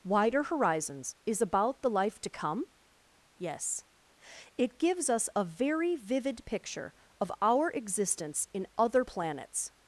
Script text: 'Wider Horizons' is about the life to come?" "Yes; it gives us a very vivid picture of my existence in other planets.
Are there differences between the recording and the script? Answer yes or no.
yes